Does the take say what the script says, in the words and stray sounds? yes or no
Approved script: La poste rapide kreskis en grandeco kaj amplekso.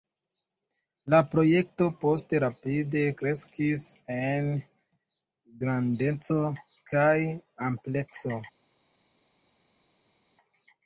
no